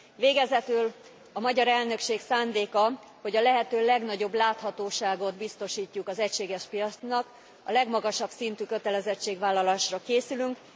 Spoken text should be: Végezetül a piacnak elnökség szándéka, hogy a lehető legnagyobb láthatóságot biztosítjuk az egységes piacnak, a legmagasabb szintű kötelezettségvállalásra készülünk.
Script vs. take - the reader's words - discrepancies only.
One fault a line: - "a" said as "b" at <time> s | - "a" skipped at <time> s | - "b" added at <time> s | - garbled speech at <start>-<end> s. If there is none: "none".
- "piacnak" said as "magyar" at 1.4 s